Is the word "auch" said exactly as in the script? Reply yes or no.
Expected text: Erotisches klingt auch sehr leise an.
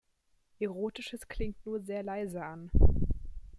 no